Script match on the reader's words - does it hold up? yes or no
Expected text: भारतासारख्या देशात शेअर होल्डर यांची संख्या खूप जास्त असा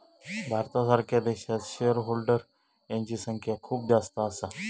yes